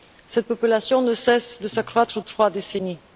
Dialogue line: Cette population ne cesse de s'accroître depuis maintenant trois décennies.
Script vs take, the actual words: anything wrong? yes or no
yes